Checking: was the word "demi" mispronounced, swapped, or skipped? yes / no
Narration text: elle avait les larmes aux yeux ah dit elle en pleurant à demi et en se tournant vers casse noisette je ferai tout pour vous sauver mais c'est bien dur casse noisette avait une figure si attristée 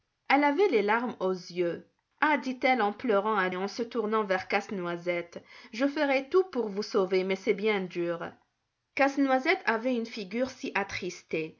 yes